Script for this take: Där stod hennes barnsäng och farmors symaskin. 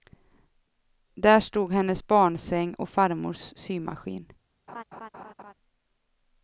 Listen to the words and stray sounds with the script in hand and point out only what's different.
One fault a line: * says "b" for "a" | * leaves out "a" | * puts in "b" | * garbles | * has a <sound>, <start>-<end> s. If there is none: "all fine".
* has a laugh, 4.7-5.5 s